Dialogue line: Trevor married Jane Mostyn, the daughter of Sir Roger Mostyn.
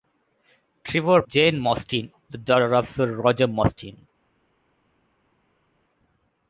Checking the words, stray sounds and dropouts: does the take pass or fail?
fail